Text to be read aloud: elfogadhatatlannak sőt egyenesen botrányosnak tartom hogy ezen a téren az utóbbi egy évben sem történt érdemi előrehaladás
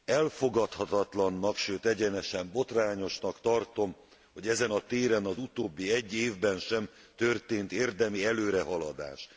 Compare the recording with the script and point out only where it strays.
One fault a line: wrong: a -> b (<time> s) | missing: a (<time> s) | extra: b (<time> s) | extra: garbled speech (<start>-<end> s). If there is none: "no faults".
no faults